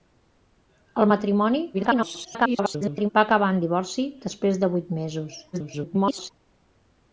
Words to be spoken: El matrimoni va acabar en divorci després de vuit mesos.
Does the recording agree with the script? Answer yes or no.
no